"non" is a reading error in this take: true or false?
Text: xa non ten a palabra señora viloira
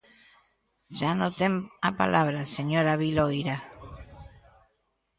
false